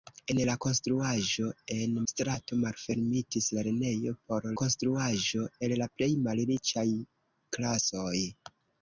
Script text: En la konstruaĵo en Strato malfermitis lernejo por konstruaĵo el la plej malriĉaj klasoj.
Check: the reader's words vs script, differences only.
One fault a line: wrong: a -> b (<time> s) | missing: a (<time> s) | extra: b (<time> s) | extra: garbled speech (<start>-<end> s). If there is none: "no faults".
no faults